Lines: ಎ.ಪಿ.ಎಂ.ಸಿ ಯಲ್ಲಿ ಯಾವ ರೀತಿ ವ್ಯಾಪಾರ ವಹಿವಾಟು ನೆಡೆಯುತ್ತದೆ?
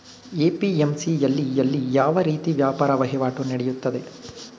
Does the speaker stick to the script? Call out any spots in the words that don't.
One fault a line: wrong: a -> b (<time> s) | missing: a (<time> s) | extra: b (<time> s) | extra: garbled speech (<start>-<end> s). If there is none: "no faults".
extra: ಯಲ್ಲಿ (1.6 s)